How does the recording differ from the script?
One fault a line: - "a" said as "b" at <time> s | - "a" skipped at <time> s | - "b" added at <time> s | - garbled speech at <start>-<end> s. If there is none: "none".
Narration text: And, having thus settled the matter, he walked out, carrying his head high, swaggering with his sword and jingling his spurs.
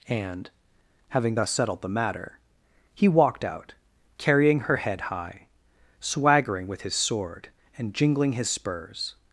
- "his" said as "her" at 4.6 s